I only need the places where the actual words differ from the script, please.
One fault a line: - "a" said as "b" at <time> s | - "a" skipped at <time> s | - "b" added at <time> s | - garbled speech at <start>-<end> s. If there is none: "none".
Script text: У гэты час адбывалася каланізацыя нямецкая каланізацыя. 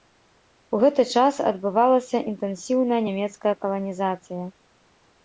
- "каланізацыя" said as "інтэнсіўная" at 2.3 s